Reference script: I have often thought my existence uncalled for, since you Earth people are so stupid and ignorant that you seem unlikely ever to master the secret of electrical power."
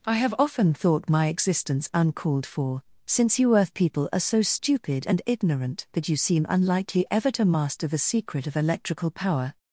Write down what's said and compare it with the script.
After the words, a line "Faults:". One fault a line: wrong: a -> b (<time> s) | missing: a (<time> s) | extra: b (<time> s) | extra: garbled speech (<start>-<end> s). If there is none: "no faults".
I have often thought my existence uncalled for, since you Earth people are so stupid and ignorant that you seem unlikely ever to master the secret of electrical power."
Faults:
no faults